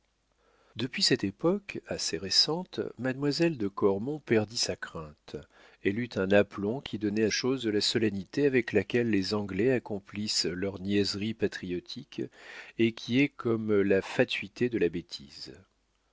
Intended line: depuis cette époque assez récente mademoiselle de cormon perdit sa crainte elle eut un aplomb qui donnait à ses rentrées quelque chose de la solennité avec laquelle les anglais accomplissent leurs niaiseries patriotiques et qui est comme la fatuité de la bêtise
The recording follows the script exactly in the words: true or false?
false